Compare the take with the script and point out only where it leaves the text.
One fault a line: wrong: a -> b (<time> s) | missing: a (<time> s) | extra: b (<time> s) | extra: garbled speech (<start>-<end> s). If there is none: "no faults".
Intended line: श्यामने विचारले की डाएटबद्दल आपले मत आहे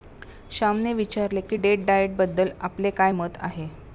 extra: डेट (1.5 s)
extra: काय (2.9 s)